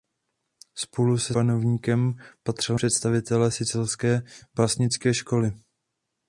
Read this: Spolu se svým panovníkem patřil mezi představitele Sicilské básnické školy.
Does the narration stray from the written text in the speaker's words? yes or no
yes